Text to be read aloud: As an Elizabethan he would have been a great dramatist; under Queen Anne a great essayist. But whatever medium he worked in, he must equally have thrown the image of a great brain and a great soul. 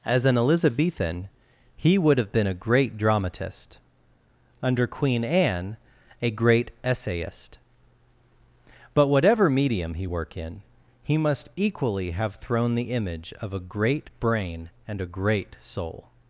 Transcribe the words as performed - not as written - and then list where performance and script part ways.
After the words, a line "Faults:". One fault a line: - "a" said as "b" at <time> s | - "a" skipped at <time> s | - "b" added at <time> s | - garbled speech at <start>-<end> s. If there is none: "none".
As an Elizabethan he would have been a great dramatist; under Queen Anne a great essayist. But whatever medium he work in, he must equally have thrown the image of a great brain and a great soul.
Faults:
- "worked" said as "work" at 10.0 s